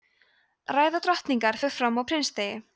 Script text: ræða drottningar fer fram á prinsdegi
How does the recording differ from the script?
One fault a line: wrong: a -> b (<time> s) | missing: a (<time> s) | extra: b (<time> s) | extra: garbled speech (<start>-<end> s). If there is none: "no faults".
no faults